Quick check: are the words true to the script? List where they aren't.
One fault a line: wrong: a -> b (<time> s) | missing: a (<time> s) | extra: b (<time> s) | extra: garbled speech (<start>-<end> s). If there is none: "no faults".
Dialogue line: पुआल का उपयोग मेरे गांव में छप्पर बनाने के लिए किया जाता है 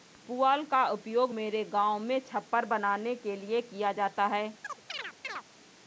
no faults